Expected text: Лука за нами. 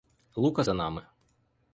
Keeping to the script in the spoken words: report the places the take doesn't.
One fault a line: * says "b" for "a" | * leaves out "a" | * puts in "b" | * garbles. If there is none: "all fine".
all fine